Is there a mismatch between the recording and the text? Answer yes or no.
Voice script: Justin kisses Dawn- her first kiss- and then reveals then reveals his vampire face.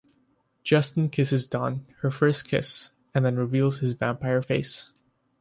yes